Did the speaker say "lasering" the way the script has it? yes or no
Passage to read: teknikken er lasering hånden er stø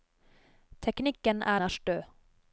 no